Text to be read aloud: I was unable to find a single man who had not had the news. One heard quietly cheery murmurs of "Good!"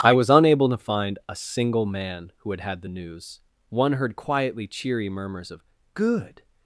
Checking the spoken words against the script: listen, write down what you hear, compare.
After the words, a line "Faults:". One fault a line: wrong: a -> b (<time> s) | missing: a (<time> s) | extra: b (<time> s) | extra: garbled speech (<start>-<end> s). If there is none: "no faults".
I was unable to find a single man who had had the news. One heard quietly cheery murmurs of "Good!"
Faults:
missing: not (2.6 s)